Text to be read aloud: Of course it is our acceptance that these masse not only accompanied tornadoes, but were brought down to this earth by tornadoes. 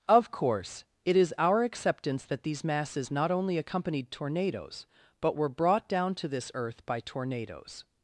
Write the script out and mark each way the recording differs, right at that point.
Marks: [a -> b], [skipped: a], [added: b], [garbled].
Of course it is our acceptance that these [masse -> masses] not only accompanied tornadoes, but were brought down to this earth by tornadoes.